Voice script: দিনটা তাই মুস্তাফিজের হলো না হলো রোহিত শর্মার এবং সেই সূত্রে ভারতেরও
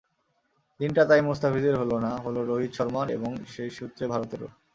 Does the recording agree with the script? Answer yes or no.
yes